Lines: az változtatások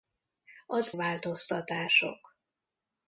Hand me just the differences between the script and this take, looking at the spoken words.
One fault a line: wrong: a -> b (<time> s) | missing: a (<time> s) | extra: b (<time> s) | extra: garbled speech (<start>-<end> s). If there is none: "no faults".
no faults